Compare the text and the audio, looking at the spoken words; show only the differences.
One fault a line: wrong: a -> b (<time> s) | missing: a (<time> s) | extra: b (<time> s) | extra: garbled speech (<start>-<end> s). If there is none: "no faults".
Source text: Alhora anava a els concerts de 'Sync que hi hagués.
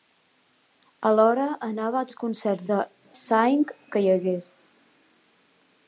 no faults